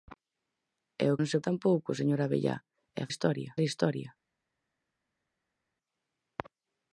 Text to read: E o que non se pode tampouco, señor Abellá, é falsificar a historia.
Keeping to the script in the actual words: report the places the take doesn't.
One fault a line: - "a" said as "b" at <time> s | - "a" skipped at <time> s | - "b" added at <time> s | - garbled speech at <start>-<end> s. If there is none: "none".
- "que" skipped at 1.2 s
- "pode" skipped at 1.4 s
- "falsificar" said as "historia" at 3.1 s